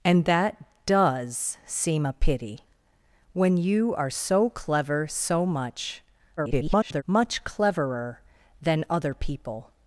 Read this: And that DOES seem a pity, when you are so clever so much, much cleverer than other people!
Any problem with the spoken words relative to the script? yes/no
yes